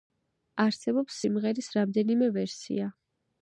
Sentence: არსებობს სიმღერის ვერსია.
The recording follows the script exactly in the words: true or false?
false